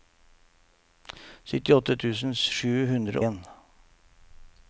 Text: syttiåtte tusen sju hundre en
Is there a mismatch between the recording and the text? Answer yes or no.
no